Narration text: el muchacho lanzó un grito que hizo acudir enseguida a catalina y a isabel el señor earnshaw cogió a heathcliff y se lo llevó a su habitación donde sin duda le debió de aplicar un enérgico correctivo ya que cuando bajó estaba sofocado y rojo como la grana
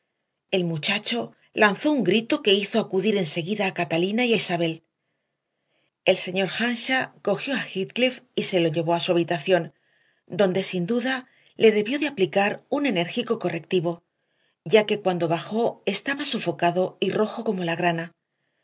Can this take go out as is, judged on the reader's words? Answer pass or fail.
pass